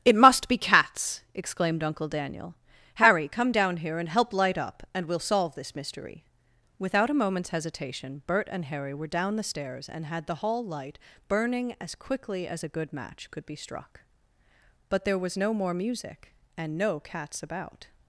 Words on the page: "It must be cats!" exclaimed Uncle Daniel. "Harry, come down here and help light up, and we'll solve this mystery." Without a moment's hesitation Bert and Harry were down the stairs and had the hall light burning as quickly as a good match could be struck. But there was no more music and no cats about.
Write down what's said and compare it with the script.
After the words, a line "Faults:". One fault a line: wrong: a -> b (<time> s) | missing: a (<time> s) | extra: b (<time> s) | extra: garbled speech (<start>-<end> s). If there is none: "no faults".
"It must be cats!" exclaimed Uncle Daniel. "Harry, come down here and help light up, and we'll solve this mystery." Without a moment's hesitation Bert and Harry were down the stairs and had the hall light burning as quickly as a good match could be struck. But there was no more music and no cats about.
Faults:
no faults